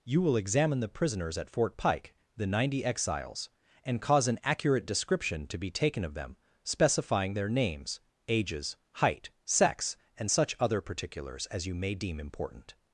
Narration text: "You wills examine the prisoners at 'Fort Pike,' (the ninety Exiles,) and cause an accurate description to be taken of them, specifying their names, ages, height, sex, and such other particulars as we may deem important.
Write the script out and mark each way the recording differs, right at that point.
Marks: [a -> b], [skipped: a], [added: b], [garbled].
"You [wills -> will] examine the prisoners at 'Fort Pike,' (the ninety Exiles,) and cause an accurate description to be taken of them, specifying their names, ages, height, sex, and such other particulars as [we -> you] may deem important.